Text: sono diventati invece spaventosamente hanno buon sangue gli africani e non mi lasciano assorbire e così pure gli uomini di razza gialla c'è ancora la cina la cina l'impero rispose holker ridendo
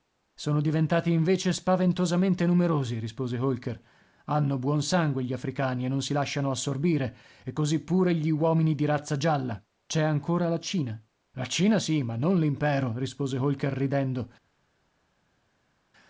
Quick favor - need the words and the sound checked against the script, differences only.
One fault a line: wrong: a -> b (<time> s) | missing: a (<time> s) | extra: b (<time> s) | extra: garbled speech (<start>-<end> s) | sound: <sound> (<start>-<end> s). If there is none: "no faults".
extra: numerosi rispose holker (2.5 s)
wrong: mi -> si (6.0 s)
extra: sì ma non (11.8 s)